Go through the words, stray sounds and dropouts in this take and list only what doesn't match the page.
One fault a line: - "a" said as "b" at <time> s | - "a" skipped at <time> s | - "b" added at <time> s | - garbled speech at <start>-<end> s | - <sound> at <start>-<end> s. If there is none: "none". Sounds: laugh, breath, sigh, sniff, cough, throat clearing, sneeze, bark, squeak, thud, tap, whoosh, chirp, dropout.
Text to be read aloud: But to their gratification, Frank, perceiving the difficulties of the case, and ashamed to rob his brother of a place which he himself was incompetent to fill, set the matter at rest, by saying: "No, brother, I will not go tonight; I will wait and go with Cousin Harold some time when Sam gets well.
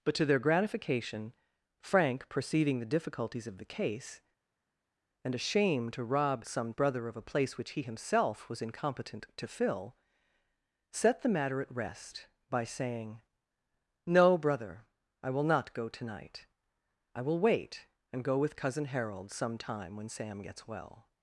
- "his" said as "some" at 6.5 s